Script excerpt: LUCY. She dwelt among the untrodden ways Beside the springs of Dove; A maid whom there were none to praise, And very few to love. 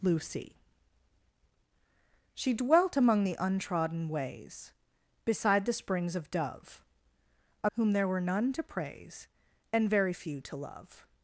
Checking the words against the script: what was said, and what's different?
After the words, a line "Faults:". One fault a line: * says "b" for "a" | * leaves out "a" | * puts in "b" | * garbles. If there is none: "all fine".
LUCY. She dwelt among the untrodden ways Beside the springs of Dove; A whom there were none to praise, And very few to love.
Faults:
* leaves out "maid"